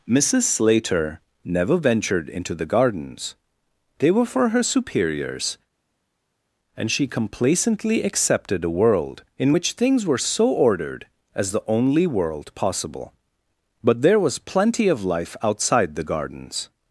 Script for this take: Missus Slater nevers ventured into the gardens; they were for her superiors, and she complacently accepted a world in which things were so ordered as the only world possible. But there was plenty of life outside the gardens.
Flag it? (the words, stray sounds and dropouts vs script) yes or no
yes